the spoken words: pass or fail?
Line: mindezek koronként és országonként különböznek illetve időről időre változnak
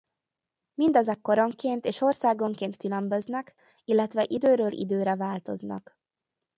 pass